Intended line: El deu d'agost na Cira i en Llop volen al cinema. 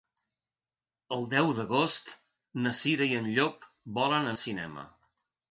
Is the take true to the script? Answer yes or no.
yes